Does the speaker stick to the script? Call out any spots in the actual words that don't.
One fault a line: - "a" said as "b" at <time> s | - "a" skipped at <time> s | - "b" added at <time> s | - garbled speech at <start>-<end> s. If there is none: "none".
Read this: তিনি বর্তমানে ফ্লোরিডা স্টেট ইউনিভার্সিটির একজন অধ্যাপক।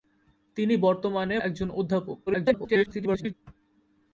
- "ফ্লোরিডা স্টেট ইউনিভার্সিটির" skipped at 1.4 s
- garbled speech at 2.3-3.3 s